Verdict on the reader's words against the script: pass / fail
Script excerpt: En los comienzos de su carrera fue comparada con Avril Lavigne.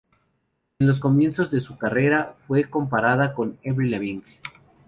pass